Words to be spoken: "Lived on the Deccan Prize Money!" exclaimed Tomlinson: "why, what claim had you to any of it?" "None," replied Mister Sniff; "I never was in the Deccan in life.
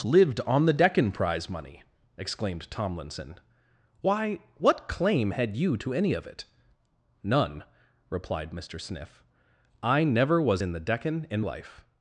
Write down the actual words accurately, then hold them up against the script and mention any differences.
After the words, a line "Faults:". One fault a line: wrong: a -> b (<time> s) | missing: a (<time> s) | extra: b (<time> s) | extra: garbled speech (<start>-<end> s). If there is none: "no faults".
"Lived on the Deccan Prize Money!" exclaimed Tomlinson: "why, what claim had you to any of it?" "None," replied Mister Sniff; "I never was in the Deccan in life.
Faults:
no faults